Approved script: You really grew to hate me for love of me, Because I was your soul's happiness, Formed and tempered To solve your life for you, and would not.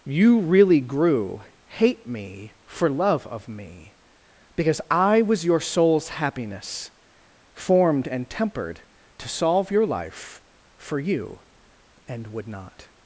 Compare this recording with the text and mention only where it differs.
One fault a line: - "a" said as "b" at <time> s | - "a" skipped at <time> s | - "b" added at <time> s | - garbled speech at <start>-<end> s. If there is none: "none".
- "to" skipped at 1.4 s